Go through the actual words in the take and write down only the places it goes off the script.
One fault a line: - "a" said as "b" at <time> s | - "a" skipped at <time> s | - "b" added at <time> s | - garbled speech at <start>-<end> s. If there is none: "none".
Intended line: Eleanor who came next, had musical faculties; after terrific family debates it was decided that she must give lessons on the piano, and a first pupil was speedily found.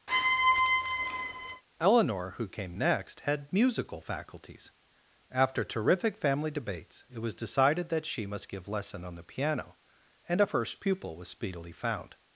- "lessons" said as "lesson" at 8.7 s